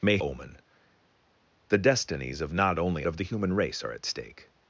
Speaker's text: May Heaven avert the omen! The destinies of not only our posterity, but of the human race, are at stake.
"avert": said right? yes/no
no